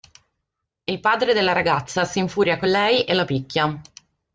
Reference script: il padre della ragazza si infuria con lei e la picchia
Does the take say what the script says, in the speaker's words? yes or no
yes